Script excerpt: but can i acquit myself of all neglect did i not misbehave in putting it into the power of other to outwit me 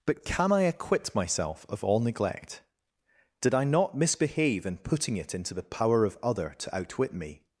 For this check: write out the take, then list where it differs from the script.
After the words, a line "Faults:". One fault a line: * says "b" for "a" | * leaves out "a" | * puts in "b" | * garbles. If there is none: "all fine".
but can i acquit myself of all neglect did i not misbehave in putting it into the power of other to outwit me
Faults:
all fine